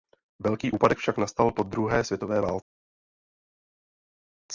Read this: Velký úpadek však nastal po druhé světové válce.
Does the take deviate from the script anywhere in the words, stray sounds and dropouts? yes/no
no